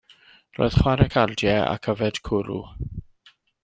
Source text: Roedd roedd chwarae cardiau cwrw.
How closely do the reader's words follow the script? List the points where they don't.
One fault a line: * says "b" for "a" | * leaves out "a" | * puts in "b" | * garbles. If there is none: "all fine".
* leaves out "roedd"
* puts in "ac yfed"